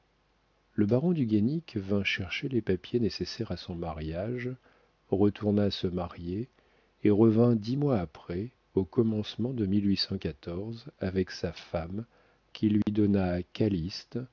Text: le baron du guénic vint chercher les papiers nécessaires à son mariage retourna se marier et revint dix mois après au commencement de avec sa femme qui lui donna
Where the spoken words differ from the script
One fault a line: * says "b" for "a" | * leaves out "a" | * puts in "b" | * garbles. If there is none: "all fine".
all fine